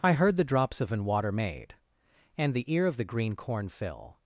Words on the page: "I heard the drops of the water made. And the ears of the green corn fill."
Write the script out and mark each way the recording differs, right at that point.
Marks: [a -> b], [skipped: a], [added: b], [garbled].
"I heard the drops of [the -> an] water made. And the [ears -> ear] of the green corn fill."